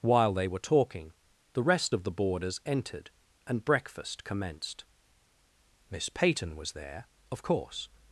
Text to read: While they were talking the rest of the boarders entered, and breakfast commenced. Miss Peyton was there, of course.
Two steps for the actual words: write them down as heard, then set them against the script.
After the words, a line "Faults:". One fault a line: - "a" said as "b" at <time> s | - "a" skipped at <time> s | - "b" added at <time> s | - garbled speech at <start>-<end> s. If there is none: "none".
While they were talking the rest of the boarders entered, and breakfast commenced. Miss Peyton was there, of course.
Faults:
none